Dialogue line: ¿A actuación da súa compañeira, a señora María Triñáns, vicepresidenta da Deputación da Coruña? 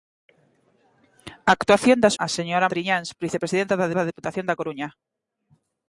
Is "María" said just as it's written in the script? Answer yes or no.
no